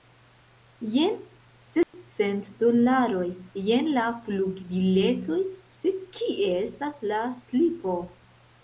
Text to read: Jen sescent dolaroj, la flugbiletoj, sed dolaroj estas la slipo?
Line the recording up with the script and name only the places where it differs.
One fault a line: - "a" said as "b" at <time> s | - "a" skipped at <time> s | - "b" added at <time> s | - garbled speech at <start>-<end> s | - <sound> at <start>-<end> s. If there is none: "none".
- dropout at 1.8-1.9 s
- "jen" added at 3.7 s
- "dolaroj" said as "kie" at 6.2 s